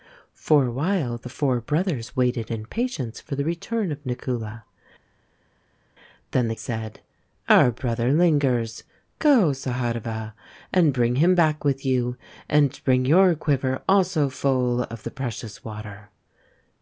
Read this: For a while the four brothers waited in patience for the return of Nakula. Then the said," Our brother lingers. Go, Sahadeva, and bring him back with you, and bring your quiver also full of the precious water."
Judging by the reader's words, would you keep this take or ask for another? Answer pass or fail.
pass